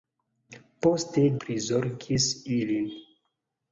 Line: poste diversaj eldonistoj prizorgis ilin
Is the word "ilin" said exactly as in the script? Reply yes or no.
yes